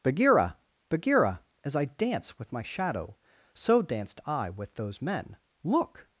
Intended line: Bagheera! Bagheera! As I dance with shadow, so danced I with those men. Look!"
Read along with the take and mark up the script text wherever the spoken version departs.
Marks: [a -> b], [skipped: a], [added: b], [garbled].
Bagheera! Bagheera! As I dance with [added: my] shadow, so danced I with those men. Look!"